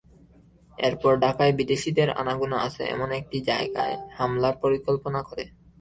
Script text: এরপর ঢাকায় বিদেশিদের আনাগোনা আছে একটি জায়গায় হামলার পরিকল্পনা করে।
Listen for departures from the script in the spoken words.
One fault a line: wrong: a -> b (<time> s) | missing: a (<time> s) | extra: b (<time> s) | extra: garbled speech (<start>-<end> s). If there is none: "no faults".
extra: এমন (2.9 s)